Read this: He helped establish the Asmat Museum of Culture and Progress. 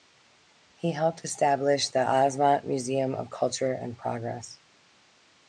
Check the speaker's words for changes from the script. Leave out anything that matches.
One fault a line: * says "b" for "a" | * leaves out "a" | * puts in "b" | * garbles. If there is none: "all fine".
all fine